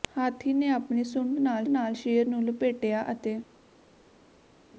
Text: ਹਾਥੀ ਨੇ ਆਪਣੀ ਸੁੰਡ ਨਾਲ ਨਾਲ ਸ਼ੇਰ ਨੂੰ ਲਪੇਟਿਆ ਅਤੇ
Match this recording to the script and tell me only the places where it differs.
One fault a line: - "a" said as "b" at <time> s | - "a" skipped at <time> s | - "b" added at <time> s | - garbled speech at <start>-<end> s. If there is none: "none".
none